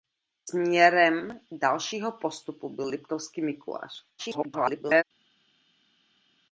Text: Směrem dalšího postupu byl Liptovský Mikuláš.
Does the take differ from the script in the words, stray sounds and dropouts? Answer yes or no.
yes